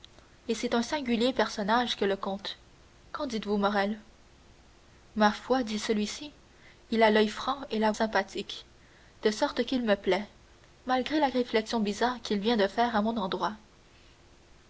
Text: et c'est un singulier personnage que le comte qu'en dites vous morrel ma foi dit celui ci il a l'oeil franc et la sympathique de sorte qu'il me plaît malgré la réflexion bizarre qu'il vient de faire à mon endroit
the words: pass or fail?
pass